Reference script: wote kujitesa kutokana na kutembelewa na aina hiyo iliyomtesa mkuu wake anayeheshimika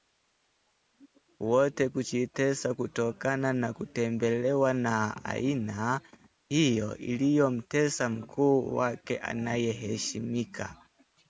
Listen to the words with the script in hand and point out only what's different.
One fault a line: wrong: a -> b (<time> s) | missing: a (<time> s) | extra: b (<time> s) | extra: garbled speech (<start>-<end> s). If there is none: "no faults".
no faults